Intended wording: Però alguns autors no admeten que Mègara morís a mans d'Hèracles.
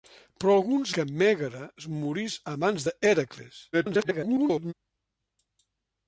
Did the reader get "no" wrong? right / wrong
wrong